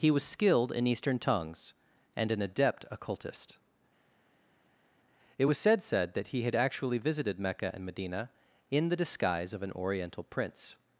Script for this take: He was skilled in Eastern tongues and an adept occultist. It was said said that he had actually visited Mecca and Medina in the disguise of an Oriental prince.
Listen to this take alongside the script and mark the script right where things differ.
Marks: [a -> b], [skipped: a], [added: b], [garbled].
He was skilled in Eastern tongues and an adept occultist. It was said said that he had actually visited Mecca and Medina in the disguise of an Oriental prince.